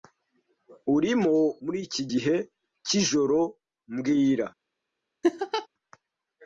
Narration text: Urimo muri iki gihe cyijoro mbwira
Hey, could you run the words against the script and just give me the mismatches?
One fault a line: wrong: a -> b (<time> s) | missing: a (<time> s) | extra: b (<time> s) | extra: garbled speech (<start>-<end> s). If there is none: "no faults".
no faults